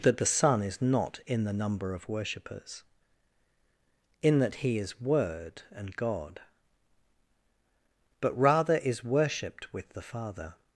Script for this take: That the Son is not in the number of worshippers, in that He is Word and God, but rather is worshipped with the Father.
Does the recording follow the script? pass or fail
pass